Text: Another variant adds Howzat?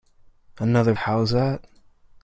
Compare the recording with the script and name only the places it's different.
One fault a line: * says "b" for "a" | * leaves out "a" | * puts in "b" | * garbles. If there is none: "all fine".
* leaves out "variant adds"